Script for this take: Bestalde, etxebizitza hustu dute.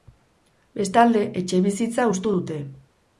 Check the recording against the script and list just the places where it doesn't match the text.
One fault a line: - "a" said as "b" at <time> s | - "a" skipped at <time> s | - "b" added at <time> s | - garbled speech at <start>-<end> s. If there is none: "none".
none